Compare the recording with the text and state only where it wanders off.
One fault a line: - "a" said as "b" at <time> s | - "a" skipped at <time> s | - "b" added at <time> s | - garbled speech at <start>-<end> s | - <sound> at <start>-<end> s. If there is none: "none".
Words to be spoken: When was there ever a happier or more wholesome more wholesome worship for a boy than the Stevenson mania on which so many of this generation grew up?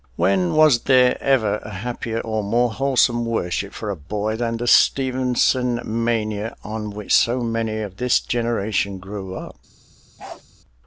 - "more wholesome" skipped at 3.2 s
- bark at 10.2-10.4 s